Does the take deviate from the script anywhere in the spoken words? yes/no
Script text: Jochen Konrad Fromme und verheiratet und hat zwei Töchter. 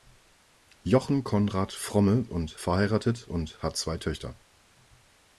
no